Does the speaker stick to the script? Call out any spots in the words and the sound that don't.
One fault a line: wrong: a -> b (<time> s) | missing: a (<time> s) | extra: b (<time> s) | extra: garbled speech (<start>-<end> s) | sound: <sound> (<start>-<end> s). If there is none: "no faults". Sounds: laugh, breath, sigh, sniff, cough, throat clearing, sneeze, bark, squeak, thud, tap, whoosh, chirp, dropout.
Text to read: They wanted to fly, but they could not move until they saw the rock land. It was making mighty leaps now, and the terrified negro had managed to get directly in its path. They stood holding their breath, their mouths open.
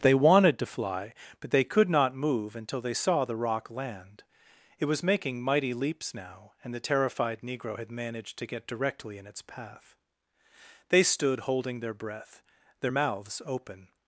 no faults